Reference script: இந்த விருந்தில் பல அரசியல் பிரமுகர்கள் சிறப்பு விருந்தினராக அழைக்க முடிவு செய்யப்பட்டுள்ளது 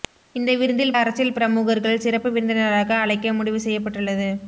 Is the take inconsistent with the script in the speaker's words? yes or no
yes